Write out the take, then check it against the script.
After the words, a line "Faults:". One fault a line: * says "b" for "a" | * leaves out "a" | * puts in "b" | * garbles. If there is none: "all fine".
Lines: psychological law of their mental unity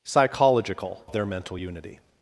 psychological of their mental unity
Faults:
* leaves out "law"